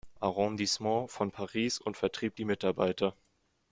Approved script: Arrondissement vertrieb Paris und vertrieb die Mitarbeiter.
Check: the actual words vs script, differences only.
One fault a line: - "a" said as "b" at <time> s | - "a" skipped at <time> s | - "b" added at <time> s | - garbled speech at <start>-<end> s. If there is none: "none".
- "vertrieb" said as "von" at 1.1 s